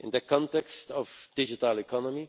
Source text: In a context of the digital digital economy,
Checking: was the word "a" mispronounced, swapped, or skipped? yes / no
yes